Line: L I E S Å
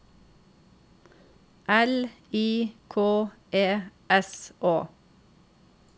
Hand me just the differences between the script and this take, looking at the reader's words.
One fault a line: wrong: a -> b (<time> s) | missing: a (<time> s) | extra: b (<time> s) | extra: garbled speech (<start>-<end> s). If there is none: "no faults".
extra: K (2.9 s)